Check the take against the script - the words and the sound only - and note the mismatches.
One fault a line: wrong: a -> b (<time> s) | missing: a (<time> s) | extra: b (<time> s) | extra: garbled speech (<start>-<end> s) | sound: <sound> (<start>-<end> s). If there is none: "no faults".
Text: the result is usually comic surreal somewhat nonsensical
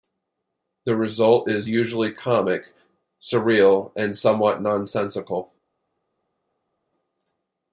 extra: and (4.0 s)